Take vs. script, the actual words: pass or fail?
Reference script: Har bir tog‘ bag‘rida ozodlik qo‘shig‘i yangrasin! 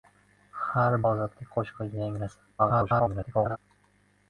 fail